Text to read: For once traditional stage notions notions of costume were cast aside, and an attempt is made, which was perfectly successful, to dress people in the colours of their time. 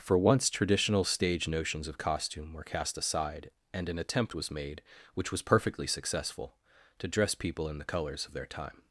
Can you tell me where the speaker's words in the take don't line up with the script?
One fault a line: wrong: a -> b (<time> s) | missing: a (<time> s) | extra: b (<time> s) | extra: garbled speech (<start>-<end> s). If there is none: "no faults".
missing: notions (1.9 s)
wrong: is -> was (4.3 s)